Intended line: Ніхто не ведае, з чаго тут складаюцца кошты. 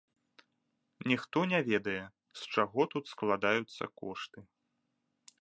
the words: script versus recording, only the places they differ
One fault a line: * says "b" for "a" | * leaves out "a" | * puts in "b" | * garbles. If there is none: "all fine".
all fine